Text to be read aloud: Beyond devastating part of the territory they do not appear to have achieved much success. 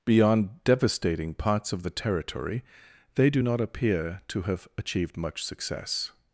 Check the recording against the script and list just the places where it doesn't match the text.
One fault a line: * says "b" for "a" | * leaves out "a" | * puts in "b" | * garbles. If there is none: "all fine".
* says "parts" for "part"